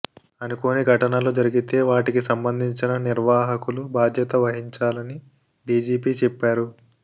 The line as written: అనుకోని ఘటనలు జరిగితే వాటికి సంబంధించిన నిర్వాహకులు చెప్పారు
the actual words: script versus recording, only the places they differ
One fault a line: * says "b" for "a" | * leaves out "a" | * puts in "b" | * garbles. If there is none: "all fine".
* puts in "బాధ్యత వహించాలని డీజీపీ"